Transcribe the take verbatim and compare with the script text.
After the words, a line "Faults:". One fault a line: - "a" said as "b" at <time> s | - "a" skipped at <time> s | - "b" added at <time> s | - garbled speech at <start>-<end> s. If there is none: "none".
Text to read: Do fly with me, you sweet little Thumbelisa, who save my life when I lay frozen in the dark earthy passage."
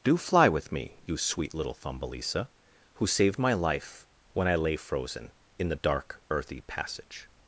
Do fly with me, you sweet little Thumbelisa, who saved my life when I lay frozen in the dark earthy passage."
Faults:
- "save" said as "saved" at 3.0 s